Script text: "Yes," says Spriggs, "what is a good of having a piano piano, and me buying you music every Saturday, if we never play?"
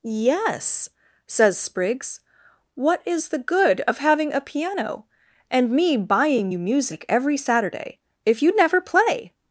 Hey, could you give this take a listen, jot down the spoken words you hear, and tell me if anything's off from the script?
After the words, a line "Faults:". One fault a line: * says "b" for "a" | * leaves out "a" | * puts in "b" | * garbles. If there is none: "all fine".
"Yes," says Spriggs, "what is the good of having a piano, and me buying you music every Saturday, if you never play?"
Faults:
* says "the" for "a"
* leaves out "piano"
* says "you" for "we"